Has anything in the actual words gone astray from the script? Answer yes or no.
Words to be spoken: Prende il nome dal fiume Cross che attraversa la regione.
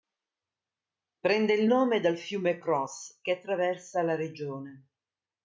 no